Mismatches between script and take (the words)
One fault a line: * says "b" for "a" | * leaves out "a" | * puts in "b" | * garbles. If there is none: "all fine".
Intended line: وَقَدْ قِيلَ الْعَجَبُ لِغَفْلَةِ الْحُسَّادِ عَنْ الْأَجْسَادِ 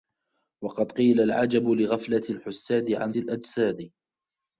all fine